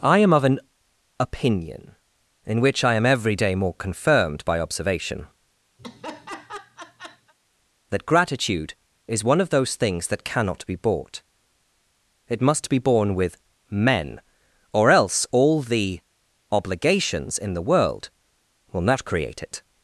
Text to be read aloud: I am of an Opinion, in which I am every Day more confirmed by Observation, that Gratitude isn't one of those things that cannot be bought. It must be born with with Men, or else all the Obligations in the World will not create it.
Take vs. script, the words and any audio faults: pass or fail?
fail